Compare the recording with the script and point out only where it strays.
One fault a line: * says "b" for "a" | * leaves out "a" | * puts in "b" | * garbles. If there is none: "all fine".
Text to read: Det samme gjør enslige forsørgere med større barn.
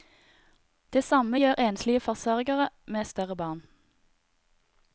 all fine